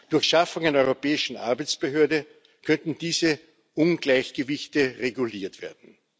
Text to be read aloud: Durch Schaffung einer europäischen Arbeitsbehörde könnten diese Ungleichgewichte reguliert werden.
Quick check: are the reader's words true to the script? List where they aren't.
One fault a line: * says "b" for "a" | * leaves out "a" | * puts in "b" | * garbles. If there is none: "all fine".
all fine